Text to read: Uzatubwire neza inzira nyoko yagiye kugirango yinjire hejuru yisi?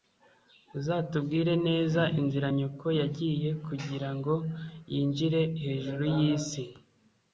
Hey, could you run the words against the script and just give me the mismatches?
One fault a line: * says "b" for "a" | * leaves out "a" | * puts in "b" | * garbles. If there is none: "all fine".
all fine